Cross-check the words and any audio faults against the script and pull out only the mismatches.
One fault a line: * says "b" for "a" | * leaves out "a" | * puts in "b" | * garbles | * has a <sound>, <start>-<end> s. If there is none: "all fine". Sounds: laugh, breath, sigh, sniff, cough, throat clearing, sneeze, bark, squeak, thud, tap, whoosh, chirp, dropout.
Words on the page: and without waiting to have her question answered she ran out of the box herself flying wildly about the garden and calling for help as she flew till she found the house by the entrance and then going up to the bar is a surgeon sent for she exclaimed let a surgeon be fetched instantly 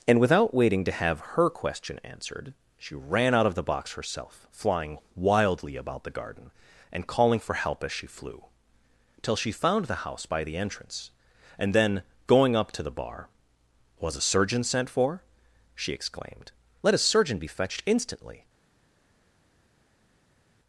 * says "was" for "is"